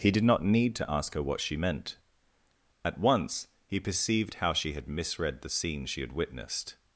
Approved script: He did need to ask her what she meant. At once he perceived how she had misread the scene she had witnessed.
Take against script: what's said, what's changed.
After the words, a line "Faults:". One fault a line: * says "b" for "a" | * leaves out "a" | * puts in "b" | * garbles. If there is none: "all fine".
He did not need to ask her what she meant. At once he perceived how she had misread the scene she had witnessed.
Faults:
* puts in "not"